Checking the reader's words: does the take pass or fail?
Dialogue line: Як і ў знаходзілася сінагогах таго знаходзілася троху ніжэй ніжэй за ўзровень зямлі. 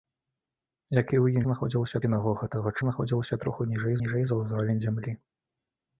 pass